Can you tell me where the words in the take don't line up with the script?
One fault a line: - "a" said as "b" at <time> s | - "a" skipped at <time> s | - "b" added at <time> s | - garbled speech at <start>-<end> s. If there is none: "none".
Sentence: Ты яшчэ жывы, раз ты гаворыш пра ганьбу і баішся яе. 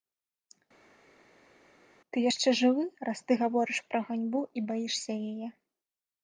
none